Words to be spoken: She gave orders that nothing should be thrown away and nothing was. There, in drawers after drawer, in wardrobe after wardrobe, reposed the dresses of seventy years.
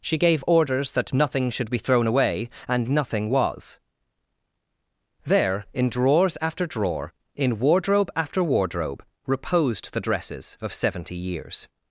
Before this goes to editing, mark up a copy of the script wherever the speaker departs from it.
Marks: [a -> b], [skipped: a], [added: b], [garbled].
She gave orders that nothing should be thrown away and nothing was. There, in drawers after drawer, in wardrobe after wardrobe, reposed the dresses of seventy years.